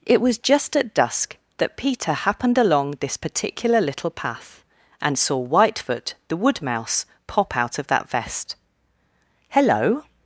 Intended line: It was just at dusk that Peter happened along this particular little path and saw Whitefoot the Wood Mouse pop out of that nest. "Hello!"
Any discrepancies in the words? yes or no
yes